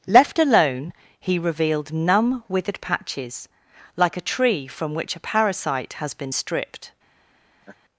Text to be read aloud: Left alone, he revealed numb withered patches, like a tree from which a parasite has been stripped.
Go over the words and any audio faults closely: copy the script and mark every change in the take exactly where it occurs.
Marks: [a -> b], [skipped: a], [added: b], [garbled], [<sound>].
Left alone, he revealed numb withered patches, like a tree from which a parasite has been stripped. [laugh]